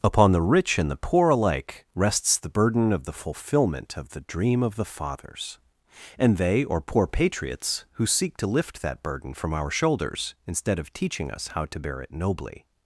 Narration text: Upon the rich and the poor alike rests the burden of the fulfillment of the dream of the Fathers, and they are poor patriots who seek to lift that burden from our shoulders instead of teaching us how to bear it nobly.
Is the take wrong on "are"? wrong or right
wrong